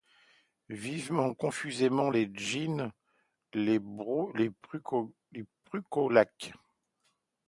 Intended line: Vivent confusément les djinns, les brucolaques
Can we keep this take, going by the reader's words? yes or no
yes